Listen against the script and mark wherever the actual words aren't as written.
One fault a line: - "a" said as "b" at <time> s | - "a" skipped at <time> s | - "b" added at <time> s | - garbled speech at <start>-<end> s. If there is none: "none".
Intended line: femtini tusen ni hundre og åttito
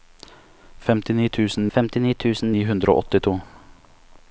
- "femtini tusen" added at 1.7 s